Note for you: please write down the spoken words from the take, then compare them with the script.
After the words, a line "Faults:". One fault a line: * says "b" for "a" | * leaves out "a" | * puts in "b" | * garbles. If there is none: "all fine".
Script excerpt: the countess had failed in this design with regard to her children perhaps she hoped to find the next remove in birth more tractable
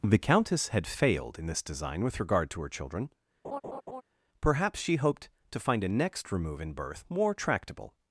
the countess had failed in this design with regard to her children perhaps she hoped to find a next remove in birth more tractable
Faults:
* says "a" for "the"